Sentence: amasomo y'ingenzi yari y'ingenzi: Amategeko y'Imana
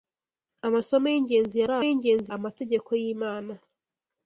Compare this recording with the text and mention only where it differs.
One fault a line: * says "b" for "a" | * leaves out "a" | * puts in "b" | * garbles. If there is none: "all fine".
all fine